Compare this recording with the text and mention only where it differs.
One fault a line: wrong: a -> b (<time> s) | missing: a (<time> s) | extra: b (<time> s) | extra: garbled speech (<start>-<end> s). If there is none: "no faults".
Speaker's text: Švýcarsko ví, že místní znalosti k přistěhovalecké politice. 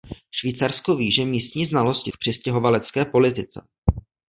no faults